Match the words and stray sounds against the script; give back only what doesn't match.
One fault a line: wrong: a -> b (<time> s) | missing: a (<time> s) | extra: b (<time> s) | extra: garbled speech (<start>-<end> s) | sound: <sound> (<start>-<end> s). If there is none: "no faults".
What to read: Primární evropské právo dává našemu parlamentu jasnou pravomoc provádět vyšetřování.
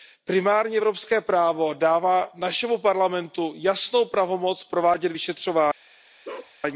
sound: bark (6.2-6.5 s)